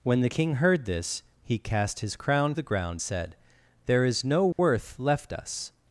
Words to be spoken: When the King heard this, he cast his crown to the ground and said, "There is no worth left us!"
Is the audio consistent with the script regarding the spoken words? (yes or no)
no